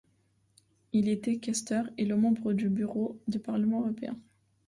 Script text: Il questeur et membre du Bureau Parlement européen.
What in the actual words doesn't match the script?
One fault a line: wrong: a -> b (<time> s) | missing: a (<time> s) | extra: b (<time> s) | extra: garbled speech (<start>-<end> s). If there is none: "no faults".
extra: était (1.1 s)
extra: du (3.3 s)